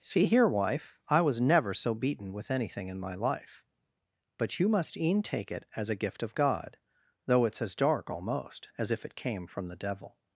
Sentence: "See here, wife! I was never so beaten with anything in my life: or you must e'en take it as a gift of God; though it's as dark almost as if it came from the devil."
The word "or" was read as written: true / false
false